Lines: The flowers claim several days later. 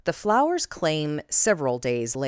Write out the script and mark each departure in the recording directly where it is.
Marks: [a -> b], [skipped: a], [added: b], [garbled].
The flowers claim several days later.